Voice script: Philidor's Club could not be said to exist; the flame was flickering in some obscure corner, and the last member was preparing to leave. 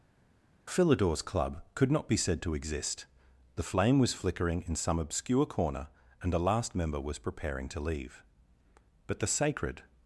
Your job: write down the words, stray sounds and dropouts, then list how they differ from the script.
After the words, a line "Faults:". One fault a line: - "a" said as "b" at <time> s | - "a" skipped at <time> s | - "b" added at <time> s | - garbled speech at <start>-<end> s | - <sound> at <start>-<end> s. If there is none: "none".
Philidor's Club could not be said to exist; the flame was flickering in some obscure corner, and the last member was preparing to leave. But the sacred
Faults:
- "But the sacred" added at 9.1 s